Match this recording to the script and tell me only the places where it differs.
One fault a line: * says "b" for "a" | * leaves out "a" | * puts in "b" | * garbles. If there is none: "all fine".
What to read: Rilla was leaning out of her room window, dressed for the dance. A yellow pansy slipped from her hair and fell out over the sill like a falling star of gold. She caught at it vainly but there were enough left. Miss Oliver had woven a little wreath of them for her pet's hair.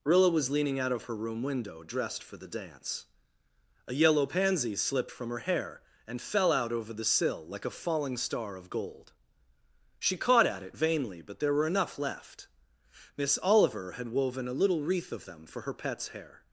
all fine